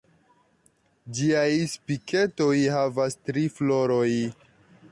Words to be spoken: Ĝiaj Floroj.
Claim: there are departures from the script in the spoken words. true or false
true